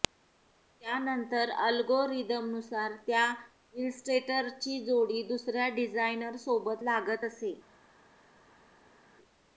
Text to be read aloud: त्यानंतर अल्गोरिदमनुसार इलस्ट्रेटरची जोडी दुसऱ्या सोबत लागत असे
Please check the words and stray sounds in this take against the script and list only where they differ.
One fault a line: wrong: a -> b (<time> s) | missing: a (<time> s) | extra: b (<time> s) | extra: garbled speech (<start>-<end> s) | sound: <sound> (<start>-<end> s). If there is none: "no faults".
extra: त्या (3.1 s)
extra: डिझायनर (5.7 s)